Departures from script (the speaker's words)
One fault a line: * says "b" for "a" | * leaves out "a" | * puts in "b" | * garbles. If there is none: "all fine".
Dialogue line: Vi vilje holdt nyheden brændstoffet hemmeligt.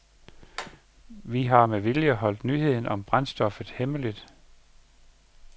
* puts in "har med"
* puts in "om"